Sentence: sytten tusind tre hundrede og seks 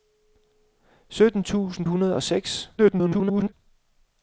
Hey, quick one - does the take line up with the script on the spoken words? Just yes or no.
no